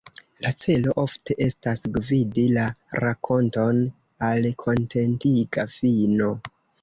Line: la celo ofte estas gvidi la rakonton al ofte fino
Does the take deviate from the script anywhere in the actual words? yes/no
yes